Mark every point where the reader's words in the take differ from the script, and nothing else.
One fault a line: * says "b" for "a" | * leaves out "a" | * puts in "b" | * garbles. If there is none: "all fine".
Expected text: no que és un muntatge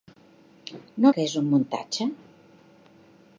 all fine